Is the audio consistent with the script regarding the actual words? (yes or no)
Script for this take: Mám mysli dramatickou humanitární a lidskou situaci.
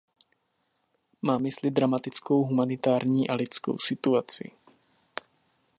yes